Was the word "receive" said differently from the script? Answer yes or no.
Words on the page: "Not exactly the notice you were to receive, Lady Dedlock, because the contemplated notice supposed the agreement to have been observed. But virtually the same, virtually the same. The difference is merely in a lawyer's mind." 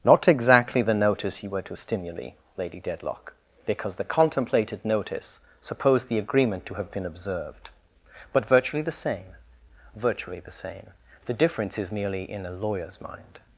yes